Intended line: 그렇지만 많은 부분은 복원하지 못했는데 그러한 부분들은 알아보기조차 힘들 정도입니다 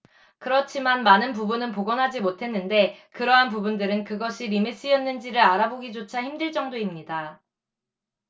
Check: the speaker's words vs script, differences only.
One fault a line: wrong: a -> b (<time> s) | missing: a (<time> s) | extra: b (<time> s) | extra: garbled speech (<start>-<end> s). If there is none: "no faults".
extra: 그것이 리메스였는지를 (4.0 s)